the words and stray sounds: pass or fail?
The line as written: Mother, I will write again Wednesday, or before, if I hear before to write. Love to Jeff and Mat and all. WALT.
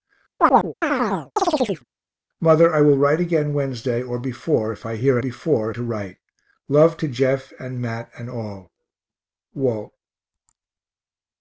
fail